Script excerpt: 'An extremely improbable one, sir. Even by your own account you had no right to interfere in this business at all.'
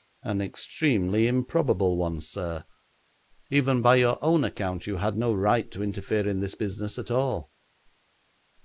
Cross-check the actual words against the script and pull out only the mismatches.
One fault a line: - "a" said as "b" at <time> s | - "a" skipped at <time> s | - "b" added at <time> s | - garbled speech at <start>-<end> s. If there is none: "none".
none